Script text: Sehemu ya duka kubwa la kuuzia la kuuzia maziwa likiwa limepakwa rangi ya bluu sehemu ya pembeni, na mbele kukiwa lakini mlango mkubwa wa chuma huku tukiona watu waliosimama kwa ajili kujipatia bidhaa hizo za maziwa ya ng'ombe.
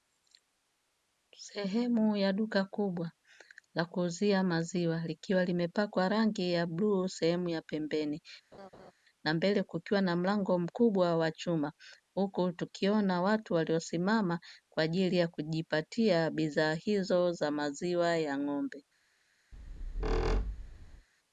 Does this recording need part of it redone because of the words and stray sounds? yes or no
yes